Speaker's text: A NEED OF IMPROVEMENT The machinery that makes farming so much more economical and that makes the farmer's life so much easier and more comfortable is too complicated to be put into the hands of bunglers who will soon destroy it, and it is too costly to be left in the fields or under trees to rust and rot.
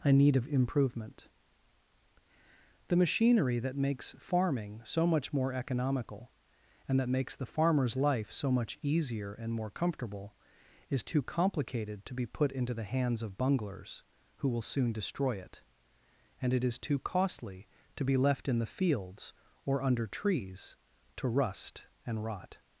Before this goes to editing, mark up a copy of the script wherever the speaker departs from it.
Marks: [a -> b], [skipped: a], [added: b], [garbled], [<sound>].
A NEED OF IMPROVEMENT The machinery that makes farming so much more economical and that makes the farmer's life so much easier and more comfortable is too complicated to be put into the hands of bunglers who will soon destroy it, and it is too costly to be left in the fields or under trees to rust and rot.